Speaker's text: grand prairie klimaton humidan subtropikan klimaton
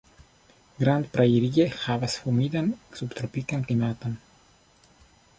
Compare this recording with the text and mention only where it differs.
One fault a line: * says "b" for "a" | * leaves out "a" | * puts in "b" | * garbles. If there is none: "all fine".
* says "havas" for "klimaton"